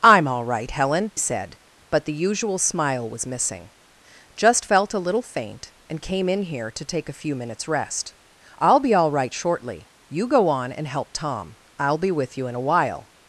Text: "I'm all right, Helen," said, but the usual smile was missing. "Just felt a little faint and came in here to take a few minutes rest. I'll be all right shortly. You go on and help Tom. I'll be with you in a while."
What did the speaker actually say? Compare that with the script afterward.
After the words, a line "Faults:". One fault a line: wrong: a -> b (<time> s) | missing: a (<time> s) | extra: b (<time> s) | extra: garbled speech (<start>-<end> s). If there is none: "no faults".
"I'm all right, Helen," said, but the usual smile was missing. "Just felt a little faint and came in here to take a few minutes rest. I'll be all right shortly. You go on and help Tom. I'll be with you in a while."
Faults:
no faults